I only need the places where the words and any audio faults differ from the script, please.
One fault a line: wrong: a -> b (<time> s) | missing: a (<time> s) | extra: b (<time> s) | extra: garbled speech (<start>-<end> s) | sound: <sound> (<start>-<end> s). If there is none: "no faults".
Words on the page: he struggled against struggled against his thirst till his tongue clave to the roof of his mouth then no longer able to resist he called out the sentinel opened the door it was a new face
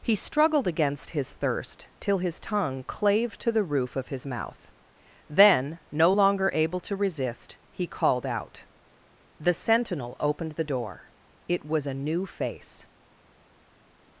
missing: struggled against (1.1 s)